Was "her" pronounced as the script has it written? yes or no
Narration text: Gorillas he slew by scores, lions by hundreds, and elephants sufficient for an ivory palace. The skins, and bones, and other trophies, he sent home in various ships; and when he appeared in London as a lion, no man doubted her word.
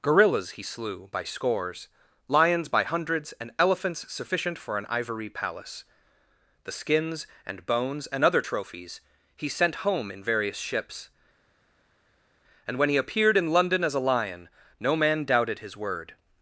no